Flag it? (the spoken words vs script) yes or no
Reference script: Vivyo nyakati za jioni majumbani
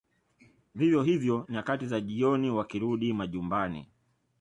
yes